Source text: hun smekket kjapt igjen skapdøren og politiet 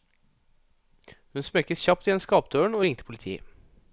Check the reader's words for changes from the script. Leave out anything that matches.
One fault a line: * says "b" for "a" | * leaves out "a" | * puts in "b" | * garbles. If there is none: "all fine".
* puts in "ringte"